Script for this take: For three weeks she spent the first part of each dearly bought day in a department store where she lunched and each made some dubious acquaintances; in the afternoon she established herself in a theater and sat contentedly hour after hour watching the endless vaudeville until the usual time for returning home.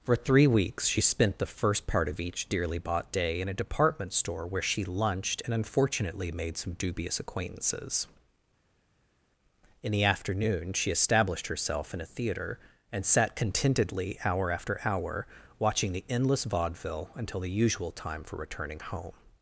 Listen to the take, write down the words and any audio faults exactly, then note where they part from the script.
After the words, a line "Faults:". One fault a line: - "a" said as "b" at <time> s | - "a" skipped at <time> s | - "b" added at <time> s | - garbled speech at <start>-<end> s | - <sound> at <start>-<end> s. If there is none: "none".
For three weeks she spent the first part of each dearly bought day in a department store where she lunched and unfortunately made some dubious acquaintances; in the afternoon she established herself in a theater and sat contentedly hour after hour watching the endless vaudeville until the usual time for returning home.
Faults:
- "each" said as "unfortunately" at 5.5 s